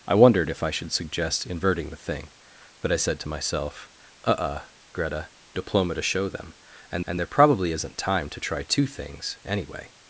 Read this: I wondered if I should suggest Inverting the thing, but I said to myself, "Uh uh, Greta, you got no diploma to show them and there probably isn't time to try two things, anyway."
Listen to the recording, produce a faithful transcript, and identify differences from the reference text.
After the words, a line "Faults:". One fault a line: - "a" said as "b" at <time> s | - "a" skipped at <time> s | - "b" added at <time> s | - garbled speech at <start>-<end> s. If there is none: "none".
I wondered if I should suggest Inverting the thing, but I said to myself, "Uh uh, Greta, diploma to show them and and there probably isn't time to try two things, anyway."
Faults:
- "you got no" skipped at 5.3 s
- "and" added at 7.1 s